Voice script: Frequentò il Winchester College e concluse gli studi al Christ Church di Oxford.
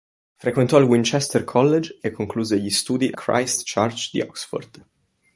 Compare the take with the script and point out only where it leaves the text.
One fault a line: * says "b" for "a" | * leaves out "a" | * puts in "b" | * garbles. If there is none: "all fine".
* leaves out "al"